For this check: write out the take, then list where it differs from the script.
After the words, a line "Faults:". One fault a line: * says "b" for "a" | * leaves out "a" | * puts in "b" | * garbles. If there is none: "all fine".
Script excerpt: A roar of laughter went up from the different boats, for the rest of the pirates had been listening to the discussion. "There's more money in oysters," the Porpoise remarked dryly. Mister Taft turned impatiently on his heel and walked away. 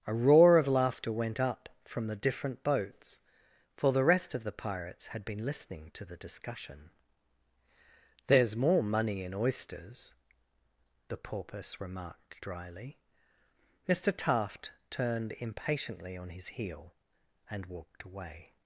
A roar of laughter went up from the different boats, for the rest of the pirates had been listening to the discussion. "There's more money in oysters," the Porpoise remarked dryly. Mister Taft turned impatiently on his heel and walked away.
Faults:
all fine